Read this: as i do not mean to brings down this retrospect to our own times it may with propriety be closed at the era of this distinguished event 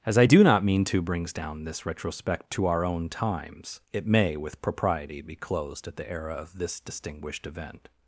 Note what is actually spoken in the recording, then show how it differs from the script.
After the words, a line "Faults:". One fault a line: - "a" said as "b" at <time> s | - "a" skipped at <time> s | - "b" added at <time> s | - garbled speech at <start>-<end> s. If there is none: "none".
as i do not mean to brings down this retrospect to our own times it may with propriety be closed at the era of this distinguished event
Faults:
none